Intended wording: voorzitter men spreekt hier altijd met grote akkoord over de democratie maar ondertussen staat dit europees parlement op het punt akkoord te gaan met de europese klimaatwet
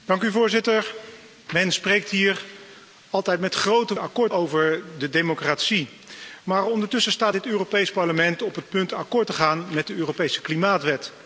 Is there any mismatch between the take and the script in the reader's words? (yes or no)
no